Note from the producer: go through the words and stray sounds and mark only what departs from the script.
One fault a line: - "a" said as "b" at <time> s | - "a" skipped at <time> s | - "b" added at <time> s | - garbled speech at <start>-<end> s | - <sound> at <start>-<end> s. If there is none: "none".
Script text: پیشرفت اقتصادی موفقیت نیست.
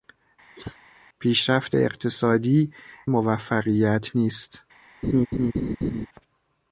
- cough at 0.6-0.8 s
- laugh at 5.0-6.1 s